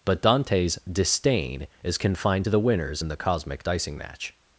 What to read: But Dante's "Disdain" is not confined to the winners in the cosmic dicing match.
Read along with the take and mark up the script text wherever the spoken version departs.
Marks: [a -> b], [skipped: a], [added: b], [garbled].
But Dante's "Disdain" is [skipped: not] confined to the winners in the cosmic dicing match.